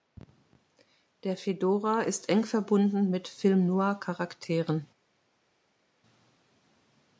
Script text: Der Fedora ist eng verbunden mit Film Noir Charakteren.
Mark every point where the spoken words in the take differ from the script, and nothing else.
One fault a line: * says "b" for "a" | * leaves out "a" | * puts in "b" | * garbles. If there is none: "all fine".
all fine